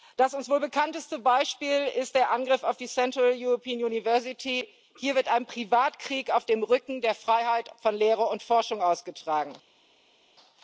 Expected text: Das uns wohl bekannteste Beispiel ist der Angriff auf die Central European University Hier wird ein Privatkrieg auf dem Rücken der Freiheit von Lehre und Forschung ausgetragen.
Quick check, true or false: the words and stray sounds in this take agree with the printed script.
true